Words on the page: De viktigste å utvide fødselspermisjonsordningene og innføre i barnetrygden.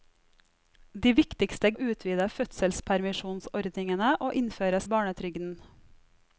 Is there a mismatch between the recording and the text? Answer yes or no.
no